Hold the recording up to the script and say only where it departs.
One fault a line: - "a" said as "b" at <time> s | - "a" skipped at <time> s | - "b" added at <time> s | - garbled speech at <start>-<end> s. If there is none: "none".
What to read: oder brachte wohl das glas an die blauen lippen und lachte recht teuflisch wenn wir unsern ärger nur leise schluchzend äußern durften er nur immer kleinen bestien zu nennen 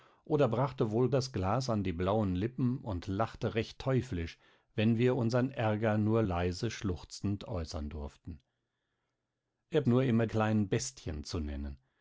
none